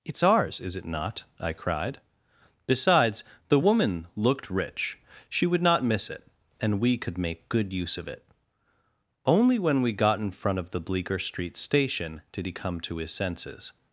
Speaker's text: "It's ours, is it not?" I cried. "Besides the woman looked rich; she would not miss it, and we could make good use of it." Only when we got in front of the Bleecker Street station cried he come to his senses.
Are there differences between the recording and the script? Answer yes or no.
yes